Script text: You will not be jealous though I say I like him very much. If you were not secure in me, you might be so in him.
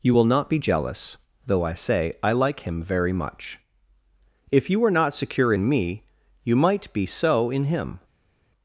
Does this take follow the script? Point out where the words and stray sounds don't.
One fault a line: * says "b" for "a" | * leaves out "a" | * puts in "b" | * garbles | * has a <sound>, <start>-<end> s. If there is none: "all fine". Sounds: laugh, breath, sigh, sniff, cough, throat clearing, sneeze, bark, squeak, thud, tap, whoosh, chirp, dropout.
all fine